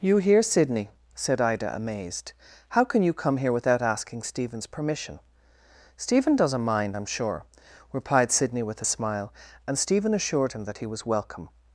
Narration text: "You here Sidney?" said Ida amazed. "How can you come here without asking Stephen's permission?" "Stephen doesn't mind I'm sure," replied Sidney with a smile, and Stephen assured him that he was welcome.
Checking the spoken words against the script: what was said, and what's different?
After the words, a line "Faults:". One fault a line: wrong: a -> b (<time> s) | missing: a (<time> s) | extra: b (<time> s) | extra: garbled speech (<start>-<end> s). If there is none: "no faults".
"You here Sidney?" said Ida amazed. "How can you come here without asking Stephen's permission?" "Stephen doesn't mind I'm sure," replied Sidney with a smile, and Stephen assured him that he was welcome.
Faults:
no faults